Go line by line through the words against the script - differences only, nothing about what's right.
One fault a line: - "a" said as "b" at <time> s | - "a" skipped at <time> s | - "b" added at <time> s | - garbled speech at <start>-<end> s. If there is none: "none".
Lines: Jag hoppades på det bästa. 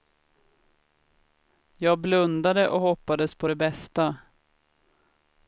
- "blundade och" added at 2.0 s